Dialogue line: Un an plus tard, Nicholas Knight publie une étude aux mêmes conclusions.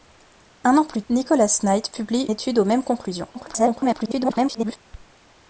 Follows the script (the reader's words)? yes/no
no